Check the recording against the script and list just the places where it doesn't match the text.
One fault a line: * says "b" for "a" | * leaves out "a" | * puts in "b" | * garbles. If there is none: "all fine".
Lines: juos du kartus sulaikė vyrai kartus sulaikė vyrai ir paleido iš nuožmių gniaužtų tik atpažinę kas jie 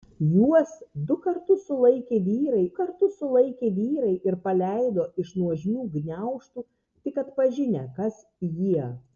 all fine